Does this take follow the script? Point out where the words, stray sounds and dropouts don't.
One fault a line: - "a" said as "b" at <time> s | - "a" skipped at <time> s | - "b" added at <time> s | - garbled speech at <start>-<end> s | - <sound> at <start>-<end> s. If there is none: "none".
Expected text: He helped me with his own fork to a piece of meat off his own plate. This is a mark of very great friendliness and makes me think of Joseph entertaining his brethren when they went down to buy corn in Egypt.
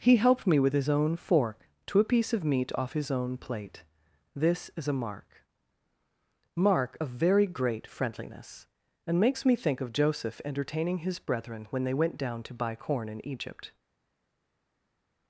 - "mark" added at 6.5 s